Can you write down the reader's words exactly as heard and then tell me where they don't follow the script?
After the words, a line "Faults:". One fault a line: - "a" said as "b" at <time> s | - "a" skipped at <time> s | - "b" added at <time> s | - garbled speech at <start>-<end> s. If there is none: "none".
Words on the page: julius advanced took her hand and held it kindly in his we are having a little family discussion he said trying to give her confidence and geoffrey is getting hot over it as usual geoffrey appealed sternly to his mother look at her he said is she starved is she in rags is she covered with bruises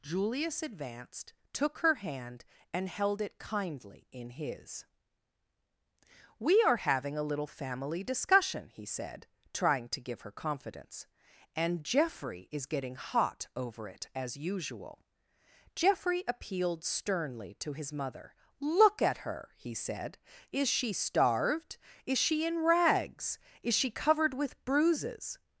julius advanced took her hand and held it kindly in his we are having a little family discussion he said trying to give her confidence and geoffrey is getting hot over it as usual geoffrey appealed sternly to his mother look at her he said is she starved is she in rags is she covered with bruises
Faults:
none